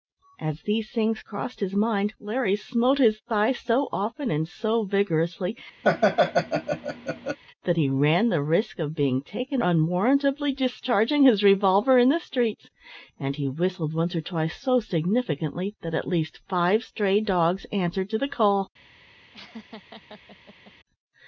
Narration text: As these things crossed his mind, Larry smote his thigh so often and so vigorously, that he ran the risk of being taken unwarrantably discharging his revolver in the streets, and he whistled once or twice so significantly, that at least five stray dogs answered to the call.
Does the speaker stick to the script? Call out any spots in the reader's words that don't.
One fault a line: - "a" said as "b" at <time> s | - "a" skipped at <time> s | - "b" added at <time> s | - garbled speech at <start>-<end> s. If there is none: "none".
none